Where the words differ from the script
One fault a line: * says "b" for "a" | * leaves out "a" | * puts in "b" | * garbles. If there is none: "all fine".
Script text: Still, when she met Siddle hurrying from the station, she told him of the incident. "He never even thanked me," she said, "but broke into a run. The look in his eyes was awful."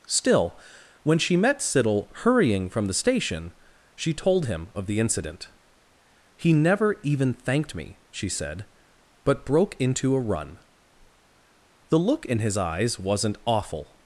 * says "wasn't" for "was"